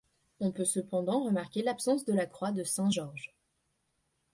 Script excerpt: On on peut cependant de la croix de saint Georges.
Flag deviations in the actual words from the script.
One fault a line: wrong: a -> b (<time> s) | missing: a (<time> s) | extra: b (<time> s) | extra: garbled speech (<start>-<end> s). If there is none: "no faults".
missing: on (0.5 s)
extra: remarquer l'absence (1.2 s)